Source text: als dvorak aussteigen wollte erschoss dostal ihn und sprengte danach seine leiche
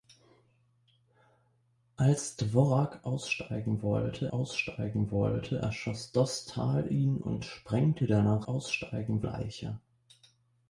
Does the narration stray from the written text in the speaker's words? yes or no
yes